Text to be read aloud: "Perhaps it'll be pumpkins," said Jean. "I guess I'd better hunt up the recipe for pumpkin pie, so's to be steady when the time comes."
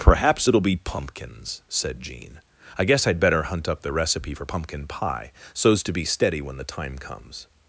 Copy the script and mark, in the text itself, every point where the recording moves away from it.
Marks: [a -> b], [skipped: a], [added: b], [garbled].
"Perhaps it'll be pumpkins," said Jean. "I guess I'd better hunt up the recipe for pumpkin pie, so's to be steady when the time comes."